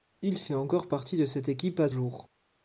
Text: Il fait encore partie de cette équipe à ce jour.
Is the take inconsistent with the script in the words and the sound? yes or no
yes